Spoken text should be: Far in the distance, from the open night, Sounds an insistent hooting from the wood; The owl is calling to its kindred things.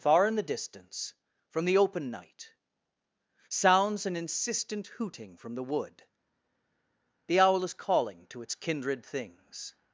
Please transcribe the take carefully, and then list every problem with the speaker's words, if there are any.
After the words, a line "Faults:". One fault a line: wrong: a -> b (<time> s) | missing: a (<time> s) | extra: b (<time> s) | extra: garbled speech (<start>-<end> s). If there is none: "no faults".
Far in the distance, from the open night, Sounds an insistent hooting from the wood; The owl is calling to its kindred things.
Faults:
no faults